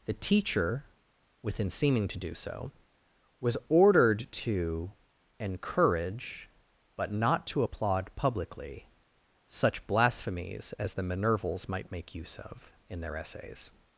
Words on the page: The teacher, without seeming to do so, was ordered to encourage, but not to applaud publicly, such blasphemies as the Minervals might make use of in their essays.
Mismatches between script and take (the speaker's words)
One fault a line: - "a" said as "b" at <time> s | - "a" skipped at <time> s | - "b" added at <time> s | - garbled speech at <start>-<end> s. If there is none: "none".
- "without" said as "within" at 1.4 s